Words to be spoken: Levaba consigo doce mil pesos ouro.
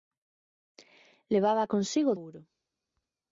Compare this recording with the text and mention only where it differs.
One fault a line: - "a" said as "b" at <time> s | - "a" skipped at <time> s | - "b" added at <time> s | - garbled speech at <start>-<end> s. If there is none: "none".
- "doce mil pesos" skipped at 2.1 s